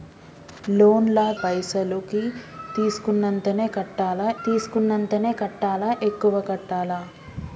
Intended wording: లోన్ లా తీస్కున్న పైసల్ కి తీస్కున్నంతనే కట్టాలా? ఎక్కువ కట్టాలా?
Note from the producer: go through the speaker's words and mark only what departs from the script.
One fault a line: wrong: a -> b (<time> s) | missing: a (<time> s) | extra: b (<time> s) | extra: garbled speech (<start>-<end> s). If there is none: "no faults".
missing: తీస్కున్న (1.2 s)
extra: తీస్కున్నంతనే కట్టాలా (4.4 s)